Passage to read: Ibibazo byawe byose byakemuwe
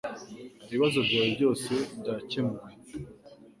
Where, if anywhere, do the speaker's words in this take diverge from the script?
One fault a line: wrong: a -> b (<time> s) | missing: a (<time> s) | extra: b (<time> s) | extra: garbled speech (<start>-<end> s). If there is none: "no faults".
no faults